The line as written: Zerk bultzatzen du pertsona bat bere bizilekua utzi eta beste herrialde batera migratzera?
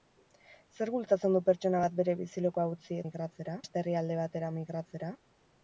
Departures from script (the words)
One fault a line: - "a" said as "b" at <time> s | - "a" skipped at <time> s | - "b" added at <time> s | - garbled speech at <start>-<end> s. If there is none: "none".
- "eta" said as "migratzera" at 3.1 s